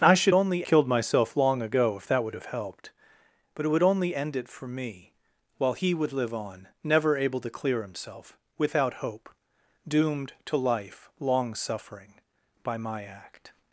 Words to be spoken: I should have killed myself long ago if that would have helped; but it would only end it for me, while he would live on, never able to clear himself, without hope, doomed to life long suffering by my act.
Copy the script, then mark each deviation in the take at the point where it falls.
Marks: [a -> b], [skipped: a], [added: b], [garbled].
I should [have -> only] killed myself long ago if that would have helped; but it would only end it for me, while he would live on, never able to clear himself, without hope, doomed to life long suffering by my act.